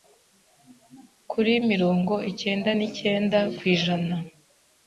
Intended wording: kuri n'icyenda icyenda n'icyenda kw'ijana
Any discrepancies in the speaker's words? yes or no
yes